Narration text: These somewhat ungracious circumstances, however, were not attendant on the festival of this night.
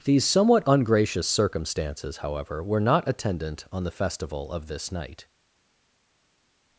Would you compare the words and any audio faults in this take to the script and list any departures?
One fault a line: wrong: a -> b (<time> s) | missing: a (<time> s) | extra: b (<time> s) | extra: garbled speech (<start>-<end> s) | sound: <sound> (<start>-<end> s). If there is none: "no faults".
no faults